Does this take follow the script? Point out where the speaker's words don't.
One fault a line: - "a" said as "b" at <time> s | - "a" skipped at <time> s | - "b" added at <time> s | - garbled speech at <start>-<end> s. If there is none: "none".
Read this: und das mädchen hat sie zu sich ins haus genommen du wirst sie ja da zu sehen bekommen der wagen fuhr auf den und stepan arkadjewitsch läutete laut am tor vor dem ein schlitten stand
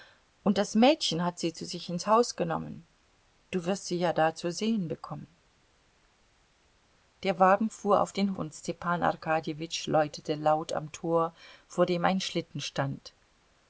none